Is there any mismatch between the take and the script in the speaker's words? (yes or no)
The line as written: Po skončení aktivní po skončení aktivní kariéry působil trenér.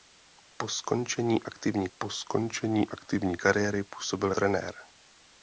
no